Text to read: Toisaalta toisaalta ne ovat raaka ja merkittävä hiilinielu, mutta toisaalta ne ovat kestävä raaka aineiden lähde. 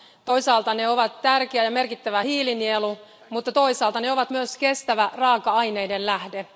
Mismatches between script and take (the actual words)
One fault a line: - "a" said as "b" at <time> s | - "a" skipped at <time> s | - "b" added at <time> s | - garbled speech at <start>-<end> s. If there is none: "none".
- "toisaalta" skipped at 0.7 s
- "raaka" said as "tärkeä" at 1.2 s
- "myös" added at 4.3 s